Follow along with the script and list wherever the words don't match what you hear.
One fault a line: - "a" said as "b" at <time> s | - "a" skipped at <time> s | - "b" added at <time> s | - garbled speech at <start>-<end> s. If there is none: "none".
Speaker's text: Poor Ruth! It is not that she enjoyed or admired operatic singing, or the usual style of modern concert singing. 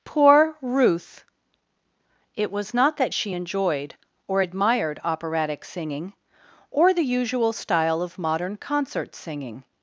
- "is" said as "was" at 2.5 s